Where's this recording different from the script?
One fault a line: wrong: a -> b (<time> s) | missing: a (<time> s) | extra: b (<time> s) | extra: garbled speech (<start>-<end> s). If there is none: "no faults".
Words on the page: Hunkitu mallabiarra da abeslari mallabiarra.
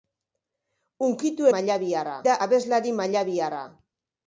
no faults